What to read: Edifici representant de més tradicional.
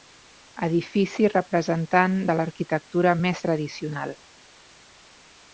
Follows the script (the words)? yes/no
no